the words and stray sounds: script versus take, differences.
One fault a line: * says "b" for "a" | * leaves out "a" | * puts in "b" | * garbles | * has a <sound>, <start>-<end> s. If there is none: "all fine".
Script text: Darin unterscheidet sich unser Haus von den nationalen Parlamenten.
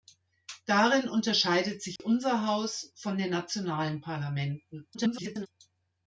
* has a dropout, 2.0-2.0 s
* garbles